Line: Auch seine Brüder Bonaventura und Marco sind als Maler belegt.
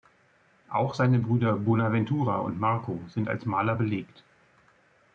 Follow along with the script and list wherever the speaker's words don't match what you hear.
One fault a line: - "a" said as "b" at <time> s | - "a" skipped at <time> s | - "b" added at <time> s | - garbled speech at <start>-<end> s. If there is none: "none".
none